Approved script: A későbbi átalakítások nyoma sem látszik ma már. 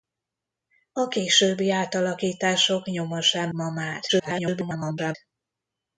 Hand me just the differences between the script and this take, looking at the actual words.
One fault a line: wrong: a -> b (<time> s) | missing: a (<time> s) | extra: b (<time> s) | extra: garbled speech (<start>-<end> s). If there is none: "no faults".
missing: látszik (3.5 s)
extra: garbled speech (4.1-5.2 s)